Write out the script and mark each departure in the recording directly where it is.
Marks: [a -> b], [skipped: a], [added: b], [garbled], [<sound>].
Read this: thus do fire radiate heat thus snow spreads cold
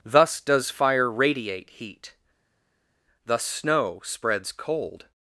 thus [do -> does] fire radiate heat thus snow spreads cold